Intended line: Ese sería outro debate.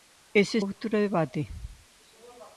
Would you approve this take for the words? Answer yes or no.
no